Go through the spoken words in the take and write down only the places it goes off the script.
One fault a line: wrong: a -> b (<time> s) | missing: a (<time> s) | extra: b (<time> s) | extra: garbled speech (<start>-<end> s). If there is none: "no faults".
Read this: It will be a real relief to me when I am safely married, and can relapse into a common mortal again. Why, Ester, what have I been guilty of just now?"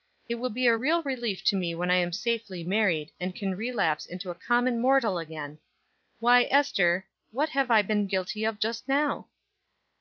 no faults